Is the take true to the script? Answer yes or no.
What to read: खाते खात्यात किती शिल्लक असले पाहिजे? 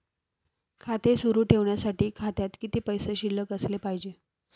no